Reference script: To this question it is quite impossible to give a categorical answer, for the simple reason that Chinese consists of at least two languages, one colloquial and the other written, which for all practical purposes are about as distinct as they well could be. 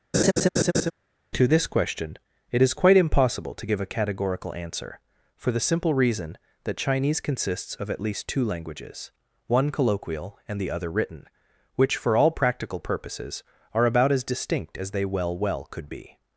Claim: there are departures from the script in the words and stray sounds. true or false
true